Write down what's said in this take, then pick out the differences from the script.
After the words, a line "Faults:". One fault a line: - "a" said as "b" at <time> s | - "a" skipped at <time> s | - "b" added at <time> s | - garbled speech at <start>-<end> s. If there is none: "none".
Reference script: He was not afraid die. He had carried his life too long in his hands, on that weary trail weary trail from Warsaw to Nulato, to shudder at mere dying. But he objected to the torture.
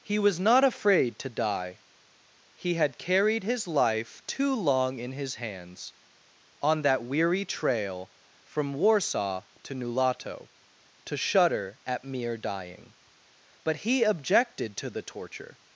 He was not afraid to die. He had carried his life too long in his hands, on that weary trail from Warsaw to Nulato, to shudder at mere dying. But he objected to the torture.
Faults:
- "to" added at 1.2 s
- "weary trail" skipped at 8.1 s